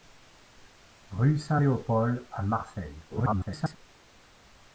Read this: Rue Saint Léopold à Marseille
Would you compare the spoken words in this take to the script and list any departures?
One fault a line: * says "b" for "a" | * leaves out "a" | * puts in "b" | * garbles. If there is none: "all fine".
* garbles